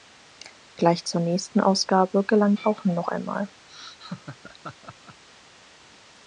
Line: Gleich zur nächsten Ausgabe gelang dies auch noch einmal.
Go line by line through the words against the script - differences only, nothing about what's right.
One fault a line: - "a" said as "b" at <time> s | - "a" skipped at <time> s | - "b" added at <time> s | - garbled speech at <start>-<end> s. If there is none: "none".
- "dies" skipped at 2.6 s